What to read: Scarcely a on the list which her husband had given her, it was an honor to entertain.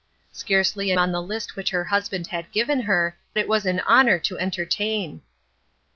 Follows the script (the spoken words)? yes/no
yes